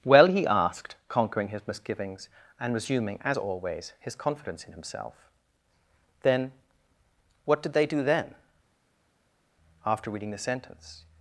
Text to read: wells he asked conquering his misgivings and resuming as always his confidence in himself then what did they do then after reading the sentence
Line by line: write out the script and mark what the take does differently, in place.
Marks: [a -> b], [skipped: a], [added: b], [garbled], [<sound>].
[wells -> well] he asked conquering his misgivings and resuming as always his confidence in himself then what did they do then after reading the sentence